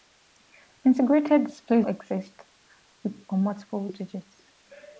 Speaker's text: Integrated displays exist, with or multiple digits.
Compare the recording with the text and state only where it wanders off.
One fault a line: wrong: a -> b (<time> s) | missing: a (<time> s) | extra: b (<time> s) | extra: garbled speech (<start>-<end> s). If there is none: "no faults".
no faults